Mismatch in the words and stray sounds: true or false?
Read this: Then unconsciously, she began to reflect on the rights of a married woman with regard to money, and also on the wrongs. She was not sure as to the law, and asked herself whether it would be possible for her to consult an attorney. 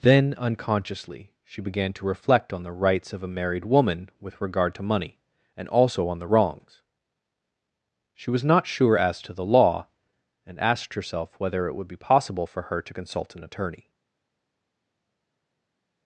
false